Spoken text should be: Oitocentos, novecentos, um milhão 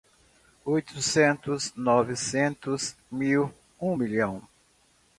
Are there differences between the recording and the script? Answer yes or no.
yes